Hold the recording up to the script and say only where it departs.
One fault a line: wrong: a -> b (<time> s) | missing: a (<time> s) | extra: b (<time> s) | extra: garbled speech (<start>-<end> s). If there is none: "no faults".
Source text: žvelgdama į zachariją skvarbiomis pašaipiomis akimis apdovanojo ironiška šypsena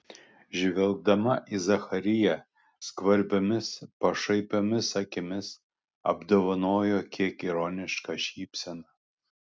extra: kiek (7.2 s)